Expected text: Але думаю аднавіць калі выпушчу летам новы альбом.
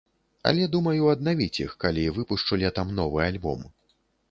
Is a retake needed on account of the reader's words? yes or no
yes